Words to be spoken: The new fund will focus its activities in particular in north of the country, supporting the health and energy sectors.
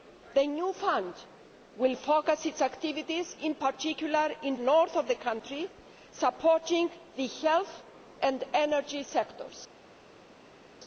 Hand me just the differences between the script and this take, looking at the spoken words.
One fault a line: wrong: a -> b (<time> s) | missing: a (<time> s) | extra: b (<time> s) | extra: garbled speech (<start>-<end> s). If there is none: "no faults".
no faults